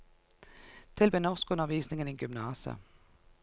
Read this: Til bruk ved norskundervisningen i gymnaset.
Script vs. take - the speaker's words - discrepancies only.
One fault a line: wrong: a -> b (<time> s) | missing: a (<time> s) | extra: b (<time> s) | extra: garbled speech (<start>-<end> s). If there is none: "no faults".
missing: bruk (1.1 s)